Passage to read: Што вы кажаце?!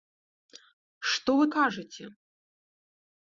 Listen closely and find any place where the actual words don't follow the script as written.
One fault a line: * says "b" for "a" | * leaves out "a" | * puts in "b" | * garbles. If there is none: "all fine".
all fine